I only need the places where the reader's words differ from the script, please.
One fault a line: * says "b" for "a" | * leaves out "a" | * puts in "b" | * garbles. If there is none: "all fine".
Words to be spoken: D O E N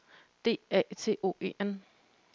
* puts in "A T"